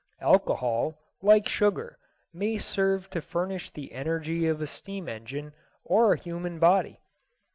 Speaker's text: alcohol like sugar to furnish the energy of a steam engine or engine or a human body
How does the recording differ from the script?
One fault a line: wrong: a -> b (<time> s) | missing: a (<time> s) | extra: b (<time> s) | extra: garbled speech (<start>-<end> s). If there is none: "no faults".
extra: may serve (2.3 s)
missing: engine or (6.1 s)